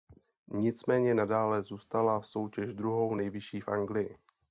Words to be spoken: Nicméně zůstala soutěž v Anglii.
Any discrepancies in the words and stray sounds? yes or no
yes